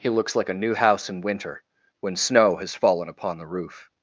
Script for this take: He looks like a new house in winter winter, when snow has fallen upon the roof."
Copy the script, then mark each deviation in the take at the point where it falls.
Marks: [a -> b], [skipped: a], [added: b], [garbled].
He looks like a new house in winter [skipped: winter,] when snow has fallen upon the roof."